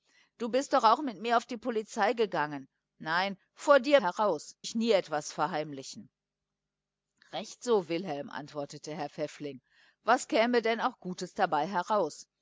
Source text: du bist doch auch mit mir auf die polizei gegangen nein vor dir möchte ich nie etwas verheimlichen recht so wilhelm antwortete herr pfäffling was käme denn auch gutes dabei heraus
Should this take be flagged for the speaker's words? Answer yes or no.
yes